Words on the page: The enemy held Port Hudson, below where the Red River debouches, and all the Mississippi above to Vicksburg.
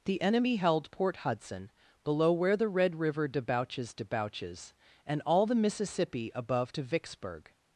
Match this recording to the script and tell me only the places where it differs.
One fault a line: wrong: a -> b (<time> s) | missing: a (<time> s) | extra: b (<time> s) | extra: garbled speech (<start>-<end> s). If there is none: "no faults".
extra: debouches (3.9 s)